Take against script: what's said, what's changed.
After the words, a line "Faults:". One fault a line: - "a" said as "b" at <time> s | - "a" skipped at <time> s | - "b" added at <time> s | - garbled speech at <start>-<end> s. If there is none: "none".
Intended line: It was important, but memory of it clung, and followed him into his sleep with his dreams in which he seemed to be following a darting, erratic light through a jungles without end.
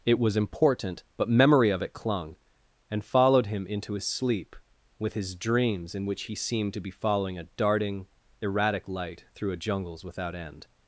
It was important, but memory of it clung, and followed him into his sleep with his dreams in which he seemed to be following a darting, erratic light through a jungles without end.
Faults:
none